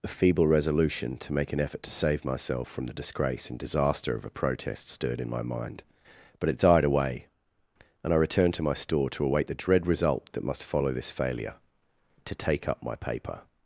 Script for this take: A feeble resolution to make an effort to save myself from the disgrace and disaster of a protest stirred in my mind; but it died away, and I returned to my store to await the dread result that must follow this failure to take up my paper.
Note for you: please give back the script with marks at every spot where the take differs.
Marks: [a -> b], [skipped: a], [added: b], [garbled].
A feeble resolution to make an effort to save myself from the disgrace and disaster of a protest stirred in my mind; but it died away, and I returned to my store to await the dread result that must follow this failure to take up my paper.